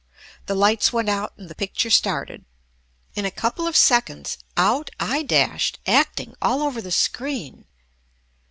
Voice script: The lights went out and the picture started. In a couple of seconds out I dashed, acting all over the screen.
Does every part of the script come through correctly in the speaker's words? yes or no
yes